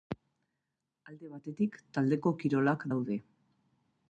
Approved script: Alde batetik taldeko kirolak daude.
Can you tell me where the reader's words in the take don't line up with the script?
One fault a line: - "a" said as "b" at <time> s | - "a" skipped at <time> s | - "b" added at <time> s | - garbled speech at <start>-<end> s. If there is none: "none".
none